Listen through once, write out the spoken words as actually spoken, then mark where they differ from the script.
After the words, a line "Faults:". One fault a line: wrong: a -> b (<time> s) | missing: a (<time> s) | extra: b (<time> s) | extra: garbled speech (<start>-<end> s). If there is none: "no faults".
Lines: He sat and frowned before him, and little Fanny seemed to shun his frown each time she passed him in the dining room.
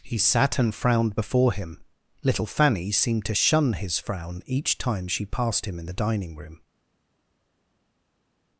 He sat and frowned before him, little Fanny seemed to shun his frown each time she passed him in the dining room.
Faults:
missing: and (1.8 s)